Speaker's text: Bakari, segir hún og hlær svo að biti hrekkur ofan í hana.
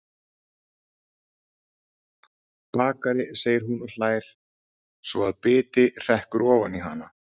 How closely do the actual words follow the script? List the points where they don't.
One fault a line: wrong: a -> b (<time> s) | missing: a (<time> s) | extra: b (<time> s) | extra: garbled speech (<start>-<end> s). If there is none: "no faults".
no faults